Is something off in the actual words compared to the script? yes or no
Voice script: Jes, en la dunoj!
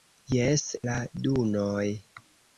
yes